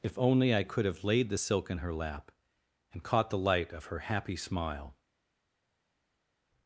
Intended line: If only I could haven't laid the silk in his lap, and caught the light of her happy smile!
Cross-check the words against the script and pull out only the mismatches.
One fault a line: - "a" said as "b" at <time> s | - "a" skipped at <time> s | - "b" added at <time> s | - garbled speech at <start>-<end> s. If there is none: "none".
- "haven't" said as "have" at 0.8 s
- "his" said as "her" at 1.8 s